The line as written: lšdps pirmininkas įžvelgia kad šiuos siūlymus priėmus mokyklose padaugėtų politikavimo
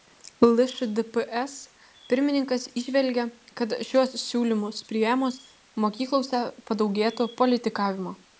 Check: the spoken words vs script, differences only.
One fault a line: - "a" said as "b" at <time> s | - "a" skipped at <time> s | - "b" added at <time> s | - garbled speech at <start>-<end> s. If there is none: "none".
none